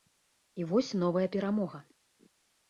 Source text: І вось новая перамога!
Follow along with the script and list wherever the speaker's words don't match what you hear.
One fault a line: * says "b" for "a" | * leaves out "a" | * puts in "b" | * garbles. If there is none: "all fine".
all fine